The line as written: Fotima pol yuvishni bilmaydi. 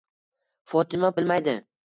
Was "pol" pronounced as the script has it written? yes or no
no